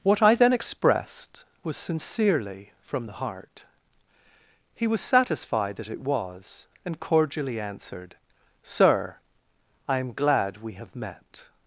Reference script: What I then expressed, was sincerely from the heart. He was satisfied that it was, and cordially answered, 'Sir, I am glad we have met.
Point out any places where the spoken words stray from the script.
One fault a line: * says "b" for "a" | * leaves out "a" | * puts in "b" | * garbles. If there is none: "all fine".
all fine